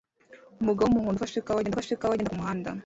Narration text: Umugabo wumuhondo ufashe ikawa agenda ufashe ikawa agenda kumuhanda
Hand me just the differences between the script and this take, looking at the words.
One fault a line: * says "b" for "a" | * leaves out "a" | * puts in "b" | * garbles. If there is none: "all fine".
all fine